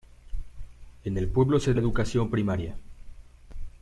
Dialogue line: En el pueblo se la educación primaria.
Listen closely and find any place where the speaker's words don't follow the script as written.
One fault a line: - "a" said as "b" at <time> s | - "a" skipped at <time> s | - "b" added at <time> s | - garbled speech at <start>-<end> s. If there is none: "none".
none